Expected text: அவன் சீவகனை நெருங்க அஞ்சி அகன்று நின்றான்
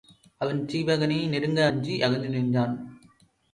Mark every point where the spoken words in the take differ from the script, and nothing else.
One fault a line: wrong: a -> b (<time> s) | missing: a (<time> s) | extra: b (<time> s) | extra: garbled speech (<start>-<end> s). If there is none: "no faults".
no faults